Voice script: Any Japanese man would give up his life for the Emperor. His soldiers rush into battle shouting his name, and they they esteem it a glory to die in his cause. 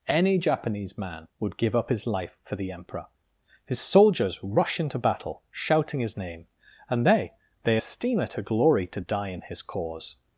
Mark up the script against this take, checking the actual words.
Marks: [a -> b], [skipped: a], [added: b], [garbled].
Any Japanese man would give up his life for the Emperor. His soldiers rush into battle shouting his name, and they they esteem it a glory to die in his cause.